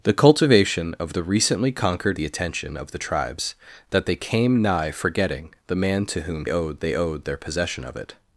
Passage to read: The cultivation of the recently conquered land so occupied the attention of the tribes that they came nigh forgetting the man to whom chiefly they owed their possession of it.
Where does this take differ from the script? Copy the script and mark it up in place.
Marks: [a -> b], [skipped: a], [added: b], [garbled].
The cultivation of the recently conquered [skipped: land so occupied] the attention of the tribes that they came nigh forgetting the man to whom [chiefly -> owed] they owed their possession of it.